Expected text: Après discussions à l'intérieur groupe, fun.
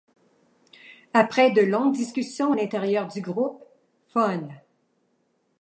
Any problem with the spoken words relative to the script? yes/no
yes